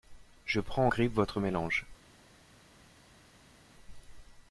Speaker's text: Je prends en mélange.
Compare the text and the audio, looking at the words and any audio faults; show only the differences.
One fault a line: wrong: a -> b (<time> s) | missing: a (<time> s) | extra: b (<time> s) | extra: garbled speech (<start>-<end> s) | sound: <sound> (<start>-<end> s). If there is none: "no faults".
extra: grippe votre (0.9 s)